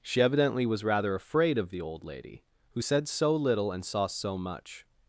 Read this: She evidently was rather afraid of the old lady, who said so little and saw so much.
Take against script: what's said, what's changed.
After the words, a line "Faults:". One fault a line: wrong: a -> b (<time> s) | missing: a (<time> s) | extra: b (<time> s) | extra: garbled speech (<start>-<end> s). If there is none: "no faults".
She evidently was rather afraid of the old lady, who said so little and saw so much.
Faults:
no faults